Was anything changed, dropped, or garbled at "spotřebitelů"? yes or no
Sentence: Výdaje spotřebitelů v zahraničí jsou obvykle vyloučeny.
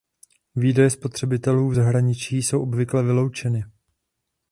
no